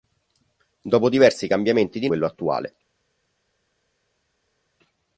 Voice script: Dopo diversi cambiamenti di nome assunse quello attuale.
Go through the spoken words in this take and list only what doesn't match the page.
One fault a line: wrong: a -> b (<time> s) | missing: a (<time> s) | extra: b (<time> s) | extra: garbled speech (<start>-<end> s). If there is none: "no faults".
missing: nome assunse (2.1 s)